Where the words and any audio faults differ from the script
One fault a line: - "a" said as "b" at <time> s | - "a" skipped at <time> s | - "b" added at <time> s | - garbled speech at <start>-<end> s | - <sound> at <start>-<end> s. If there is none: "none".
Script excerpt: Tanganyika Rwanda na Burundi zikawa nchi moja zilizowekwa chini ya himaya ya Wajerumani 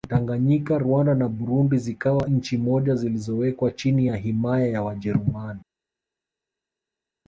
none